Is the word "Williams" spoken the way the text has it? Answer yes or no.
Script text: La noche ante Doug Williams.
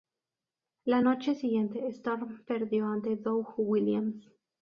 yes